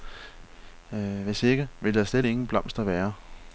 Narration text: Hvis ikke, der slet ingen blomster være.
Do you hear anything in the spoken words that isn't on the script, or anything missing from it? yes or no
yes